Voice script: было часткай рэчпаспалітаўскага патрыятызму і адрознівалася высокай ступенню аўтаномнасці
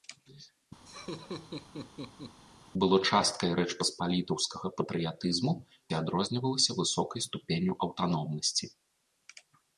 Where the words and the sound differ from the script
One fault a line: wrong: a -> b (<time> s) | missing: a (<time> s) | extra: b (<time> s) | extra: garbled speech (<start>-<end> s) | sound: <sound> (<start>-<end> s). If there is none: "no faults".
sound: laugh (0.9-2.4 s)